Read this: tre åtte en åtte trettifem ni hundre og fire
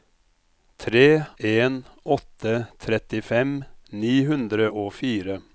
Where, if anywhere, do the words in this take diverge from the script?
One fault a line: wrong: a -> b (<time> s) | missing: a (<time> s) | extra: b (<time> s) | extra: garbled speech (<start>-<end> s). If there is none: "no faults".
missing: åtte (1.2 s)